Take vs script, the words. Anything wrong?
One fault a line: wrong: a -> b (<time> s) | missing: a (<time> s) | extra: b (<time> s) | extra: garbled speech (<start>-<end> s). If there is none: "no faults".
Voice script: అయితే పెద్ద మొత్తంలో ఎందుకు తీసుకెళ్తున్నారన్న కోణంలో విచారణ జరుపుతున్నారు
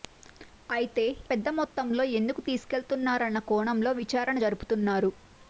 no faults